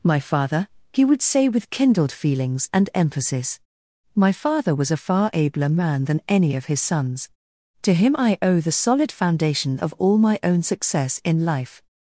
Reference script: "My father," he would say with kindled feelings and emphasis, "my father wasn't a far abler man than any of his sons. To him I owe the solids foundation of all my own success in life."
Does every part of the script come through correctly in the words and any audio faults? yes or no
no